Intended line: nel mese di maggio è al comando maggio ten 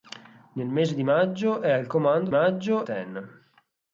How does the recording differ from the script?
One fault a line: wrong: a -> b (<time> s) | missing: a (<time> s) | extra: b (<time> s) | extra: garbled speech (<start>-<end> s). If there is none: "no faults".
no faults